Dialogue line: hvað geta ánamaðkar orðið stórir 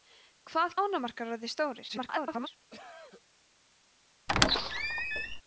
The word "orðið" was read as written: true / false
true